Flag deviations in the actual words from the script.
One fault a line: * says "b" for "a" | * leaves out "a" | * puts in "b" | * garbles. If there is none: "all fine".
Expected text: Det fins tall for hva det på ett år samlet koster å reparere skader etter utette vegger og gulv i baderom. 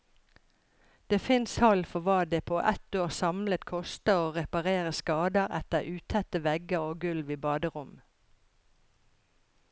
all fine